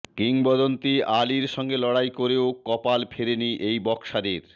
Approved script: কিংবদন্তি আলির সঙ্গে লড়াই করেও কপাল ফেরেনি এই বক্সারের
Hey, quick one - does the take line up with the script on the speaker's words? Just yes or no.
yes